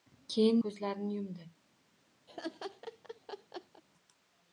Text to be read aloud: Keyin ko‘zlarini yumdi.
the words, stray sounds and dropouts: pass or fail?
fail